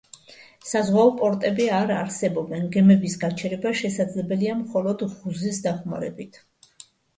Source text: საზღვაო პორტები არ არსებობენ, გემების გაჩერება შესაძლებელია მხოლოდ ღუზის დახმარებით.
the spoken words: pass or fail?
pass